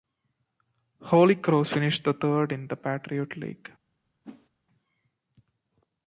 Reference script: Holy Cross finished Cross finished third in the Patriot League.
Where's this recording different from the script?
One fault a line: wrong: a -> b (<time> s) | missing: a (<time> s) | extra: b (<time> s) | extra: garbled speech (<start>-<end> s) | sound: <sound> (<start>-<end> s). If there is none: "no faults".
missing: Cross finished (2.0 s)
sound: whoosh (4.2-4.5 s)